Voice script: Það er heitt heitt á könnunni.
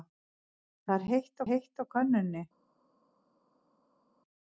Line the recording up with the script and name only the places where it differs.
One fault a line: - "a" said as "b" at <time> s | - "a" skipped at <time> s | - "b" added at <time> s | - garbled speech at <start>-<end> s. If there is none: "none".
none